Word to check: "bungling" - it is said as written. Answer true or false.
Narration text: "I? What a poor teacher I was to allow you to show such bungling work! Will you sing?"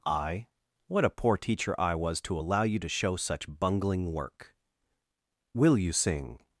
true